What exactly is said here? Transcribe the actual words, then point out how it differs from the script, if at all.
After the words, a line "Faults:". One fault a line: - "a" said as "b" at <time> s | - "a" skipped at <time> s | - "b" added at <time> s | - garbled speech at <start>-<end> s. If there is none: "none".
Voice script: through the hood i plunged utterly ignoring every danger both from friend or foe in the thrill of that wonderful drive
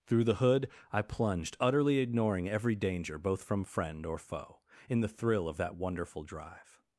through the hood i plunged utterly ignoring every danger both from friend or foe in the thrill of that wonderful drive
Faults:
none